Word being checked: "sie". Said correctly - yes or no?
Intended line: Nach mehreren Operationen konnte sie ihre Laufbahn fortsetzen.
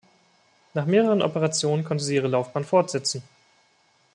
yes